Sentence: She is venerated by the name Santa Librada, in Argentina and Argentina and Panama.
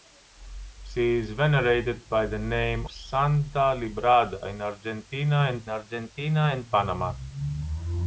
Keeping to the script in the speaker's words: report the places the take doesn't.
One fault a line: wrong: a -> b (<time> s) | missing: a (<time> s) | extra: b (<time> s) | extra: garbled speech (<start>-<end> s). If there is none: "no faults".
no faults